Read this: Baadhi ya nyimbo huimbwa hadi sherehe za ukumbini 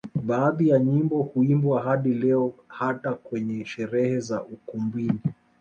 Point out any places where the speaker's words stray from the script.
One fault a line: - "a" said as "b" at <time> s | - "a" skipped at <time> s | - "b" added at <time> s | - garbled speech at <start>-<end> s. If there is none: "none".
- "leo hata kwenye" added at 2.1 s